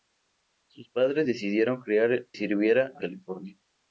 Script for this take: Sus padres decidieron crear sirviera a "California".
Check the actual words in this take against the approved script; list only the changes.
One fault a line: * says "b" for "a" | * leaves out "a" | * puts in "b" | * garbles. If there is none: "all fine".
all fine